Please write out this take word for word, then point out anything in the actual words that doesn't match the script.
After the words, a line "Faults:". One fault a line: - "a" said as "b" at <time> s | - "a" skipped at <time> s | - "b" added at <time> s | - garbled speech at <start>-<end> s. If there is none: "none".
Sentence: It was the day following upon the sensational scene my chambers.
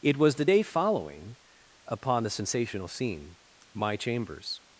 It was the day following upon the sensational scene my chambers.
Faults:
none